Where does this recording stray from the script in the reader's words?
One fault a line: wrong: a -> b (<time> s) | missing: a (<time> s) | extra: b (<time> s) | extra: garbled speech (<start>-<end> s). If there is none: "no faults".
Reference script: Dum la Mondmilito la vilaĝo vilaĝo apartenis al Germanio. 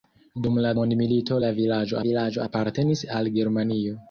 no faults